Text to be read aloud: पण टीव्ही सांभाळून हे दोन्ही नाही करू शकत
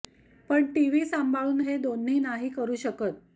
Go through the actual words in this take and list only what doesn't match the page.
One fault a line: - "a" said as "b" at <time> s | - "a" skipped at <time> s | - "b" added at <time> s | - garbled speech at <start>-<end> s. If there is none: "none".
none